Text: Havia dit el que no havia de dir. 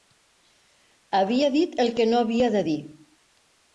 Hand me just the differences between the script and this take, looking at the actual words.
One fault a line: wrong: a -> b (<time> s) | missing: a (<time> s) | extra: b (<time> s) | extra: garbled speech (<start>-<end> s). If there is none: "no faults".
no faults